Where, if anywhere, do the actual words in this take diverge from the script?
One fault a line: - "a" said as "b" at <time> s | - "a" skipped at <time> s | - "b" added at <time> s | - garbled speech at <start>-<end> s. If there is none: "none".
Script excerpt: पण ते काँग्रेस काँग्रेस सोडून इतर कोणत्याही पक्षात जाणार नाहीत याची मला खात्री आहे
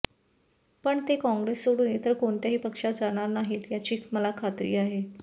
- "काँग्रेस" skipped at 1.7 s